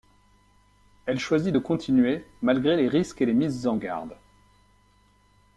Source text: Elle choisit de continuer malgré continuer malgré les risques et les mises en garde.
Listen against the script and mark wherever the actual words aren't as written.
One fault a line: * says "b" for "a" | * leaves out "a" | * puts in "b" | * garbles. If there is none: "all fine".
* leaves out "continuer malgré"